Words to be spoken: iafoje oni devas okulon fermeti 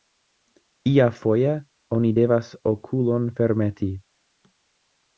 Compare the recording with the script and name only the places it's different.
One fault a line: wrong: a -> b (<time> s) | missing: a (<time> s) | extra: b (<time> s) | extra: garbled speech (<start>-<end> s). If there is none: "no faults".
no faults